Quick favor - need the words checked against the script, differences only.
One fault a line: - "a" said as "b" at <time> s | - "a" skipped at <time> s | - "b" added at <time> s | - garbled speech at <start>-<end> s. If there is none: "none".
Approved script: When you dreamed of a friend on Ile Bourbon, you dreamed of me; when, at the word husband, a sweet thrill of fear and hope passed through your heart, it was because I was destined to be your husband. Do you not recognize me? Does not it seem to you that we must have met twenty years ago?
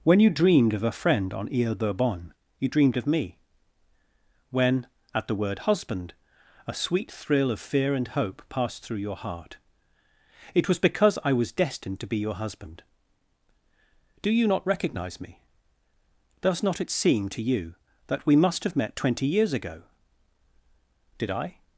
- "Did I" added at 21.2 s